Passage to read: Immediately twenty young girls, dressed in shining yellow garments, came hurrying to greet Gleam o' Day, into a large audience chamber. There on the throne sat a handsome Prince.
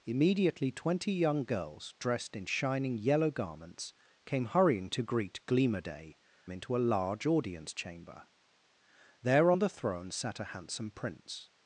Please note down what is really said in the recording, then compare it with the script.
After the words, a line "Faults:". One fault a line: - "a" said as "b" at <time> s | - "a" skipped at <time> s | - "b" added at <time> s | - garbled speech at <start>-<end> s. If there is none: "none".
Immediately twenty young girls, dressed in shining yellow garments, came hurrying to greet Gleam o' Day, into a large audience chamber. There on the throne sat a handsome Prince.
Faults:
none